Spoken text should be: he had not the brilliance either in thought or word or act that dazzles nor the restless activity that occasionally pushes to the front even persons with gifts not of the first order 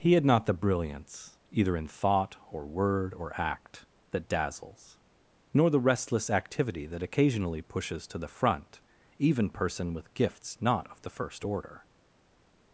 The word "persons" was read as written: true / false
false